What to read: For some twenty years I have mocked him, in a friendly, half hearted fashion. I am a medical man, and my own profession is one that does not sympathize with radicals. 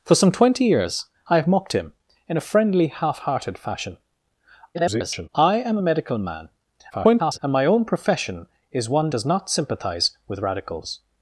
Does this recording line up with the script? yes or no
no